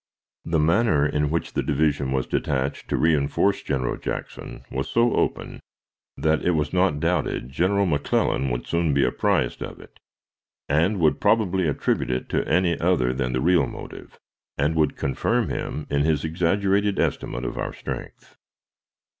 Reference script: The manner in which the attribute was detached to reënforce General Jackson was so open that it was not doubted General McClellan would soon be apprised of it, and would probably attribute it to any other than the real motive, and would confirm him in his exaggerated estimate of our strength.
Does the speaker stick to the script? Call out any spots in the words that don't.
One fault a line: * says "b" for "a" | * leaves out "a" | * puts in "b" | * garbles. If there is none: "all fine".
* says "division" for "attribute"